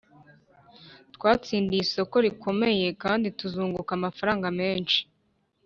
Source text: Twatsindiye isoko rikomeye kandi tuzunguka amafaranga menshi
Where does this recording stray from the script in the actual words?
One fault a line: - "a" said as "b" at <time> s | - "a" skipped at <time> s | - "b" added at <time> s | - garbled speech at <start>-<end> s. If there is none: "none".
none